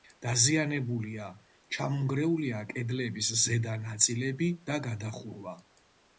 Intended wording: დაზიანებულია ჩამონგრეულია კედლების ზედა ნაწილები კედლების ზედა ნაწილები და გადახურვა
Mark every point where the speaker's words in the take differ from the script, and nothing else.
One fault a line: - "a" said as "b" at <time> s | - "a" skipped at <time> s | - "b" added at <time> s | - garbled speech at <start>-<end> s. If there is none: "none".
- "კედლების ზედა ნაწილები" skipped at 4.5 s